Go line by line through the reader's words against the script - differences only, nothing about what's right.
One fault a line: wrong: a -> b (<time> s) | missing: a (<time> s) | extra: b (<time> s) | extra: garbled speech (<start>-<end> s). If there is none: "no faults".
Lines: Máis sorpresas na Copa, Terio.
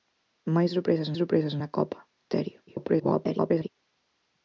extra: sorpresas (1.2 s)
extra: garbled speech (2.7-3.7 s)